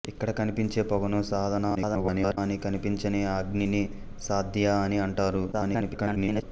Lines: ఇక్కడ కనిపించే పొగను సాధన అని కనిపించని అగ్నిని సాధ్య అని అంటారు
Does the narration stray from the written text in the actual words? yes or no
yes